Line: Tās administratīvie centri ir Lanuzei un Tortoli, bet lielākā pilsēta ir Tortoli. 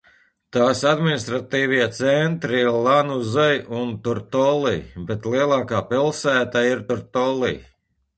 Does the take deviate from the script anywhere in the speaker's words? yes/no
no